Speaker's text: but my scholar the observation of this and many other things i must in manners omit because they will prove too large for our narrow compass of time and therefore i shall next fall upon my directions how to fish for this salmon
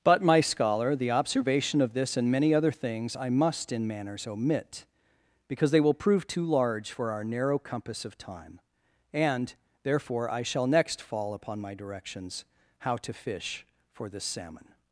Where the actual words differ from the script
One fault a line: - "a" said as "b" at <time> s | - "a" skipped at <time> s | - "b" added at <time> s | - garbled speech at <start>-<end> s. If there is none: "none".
none